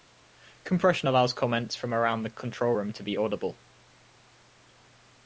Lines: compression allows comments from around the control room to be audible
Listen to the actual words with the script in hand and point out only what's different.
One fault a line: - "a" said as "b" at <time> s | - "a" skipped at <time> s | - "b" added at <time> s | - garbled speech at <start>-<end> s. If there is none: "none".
none